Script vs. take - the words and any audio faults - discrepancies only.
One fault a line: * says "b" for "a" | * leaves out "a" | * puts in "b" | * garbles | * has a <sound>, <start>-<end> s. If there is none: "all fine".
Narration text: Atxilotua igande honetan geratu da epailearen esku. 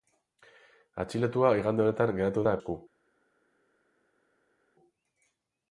* leaves out "epailearen"